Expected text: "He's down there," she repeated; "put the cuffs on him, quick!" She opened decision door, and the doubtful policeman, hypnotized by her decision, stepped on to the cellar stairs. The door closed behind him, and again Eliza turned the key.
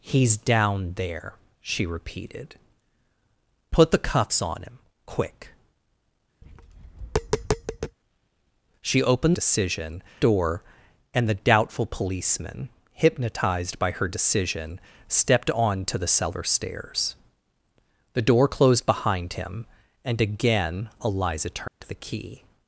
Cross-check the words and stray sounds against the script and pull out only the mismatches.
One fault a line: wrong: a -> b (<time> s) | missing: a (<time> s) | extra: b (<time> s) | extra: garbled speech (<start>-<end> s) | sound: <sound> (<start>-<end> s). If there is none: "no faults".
sound: tap (6.4-8.0 s)
sound: dropout (21.7-21.8 s)